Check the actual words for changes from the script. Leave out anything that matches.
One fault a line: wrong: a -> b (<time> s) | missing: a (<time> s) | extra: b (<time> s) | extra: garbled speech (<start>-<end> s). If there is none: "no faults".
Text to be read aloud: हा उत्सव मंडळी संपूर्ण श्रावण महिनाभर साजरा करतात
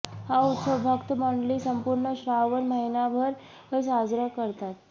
extra: भक्त (0.8 s)